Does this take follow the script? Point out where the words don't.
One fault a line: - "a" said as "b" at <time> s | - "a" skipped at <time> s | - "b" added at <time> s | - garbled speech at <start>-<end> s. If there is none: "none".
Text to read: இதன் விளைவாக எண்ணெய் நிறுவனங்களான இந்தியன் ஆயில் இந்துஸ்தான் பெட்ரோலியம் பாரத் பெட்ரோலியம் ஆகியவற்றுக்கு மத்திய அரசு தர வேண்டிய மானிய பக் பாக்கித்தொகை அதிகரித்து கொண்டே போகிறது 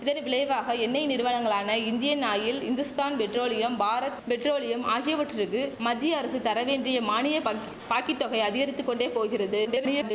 - garbled speech at 9.6-10.1 s